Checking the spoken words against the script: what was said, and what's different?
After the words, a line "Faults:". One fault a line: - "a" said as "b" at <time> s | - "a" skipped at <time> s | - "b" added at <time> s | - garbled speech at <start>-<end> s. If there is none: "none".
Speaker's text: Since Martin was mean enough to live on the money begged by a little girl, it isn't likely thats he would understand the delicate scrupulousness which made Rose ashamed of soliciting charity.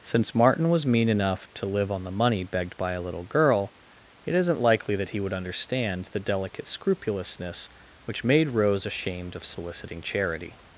Since Martin was mean enough to live on the money begged by a little girl, it isn't likely that he would understand the delicate scrupulousness which made Rose ashamed of soliciting charity.
Faults:
- "thats" said as "that" at 5.0 s